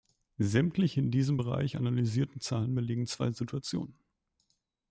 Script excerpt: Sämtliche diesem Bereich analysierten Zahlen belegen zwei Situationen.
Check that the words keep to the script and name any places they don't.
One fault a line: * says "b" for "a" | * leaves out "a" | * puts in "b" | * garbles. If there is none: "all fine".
* puts in "in"